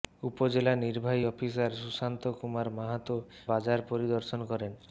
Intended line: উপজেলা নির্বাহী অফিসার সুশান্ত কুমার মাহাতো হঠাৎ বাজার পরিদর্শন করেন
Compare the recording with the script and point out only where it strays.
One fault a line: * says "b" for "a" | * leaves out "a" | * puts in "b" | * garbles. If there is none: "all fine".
* leaves out "হঠাৎ"